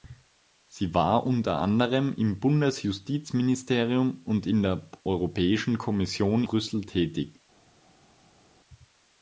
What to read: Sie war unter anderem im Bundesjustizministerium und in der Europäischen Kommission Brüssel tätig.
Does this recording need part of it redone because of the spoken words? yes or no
no